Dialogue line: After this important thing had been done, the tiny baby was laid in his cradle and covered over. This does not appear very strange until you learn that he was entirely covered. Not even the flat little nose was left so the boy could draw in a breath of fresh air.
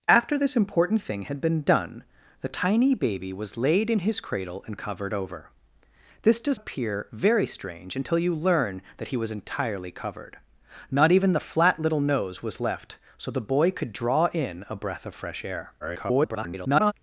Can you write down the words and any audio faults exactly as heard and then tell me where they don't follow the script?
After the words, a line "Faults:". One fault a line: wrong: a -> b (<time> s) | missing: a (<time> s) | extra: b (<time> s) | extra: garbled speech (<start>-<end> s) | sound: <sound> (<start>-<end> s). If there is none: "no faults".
After this important thing had been done, the tiny baby was laid in his cradle and covered over. This does appear very strange until you learn that he was entirely covered. Not even the flat little nose was left so the boy could draw in a breath of fresh air. [garbled]
Faults:
missing: not (6.6 s)
extra: garbled speech (15.8-16.9 s)